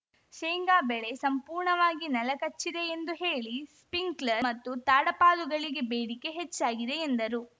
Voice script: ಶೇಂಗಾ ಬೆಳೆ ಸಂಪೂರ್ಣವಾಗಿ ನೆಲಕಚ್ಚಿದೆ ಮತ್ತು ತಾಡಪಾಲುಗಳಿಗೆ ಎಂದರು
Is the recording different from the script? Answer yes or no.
yes